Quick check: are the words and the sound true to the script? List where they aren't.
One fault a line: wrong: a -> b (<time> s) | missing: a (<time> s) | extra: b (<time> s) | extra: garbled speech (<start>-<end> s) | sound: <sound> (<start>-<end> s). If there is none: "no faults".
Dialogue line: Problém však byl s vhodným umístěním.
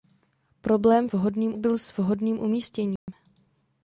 wrong: však -> vhodným (1.1 s)
sound: dropout (3.0-3.1 s)